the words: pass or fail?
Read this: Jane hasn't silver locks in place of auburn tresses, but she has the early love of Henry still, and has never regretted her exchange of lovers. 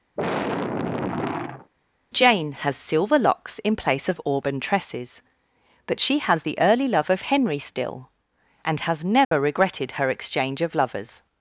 fail